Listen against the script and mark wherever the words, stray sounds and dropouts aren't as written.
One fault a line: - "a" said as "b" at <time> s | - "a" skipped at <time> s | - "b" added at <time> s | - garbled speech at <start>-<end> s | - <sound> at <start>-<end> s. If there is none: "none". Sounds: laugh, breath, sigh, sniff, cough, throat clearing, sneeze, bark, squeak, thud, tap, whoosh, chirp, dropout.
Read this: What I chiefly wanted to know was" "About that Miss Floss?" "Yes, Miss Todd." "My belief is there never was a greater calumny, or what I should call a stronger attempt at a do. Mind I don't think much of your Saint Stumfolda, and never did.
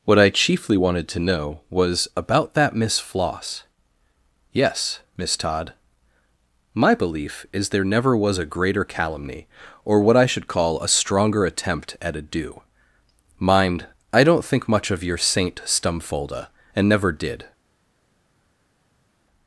none